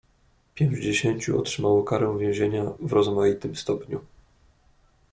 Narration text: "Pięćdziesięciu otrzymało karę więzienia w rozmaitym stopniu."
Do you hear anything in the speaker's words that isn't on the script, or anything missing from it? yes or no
no